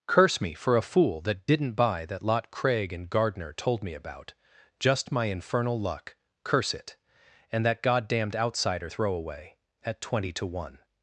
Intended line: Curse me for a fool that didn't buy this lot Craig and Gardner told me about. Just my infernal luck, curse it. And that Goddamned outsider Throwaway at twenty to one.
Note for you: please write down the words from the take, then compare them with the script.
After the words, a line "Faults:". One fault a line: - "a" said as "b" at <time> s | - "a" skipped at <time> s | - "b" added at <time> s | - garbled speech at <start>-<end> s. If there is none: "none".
Curse me for a fool that didn't buy that lot Craig and Gardner told me about. Just my infernal luck, curse it. And that Goddamned outsider Throwaway at twenty to one.
Faults:
- "this" said as "that" at 2.1 s